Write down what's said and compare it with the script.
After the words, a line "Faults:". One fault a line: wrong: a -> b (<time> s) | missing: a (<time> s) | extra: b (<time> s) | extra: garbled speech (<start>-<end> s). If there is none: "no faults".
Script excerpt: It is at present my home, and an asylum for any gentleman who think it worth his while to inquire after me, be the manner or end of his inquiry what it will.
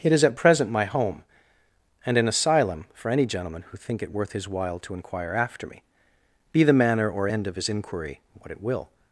It is at present my home, and an asylum for any gentleman who think it worth his while to inquire after me, be the manner or end of his inquiry what it will.
Faults:
no faults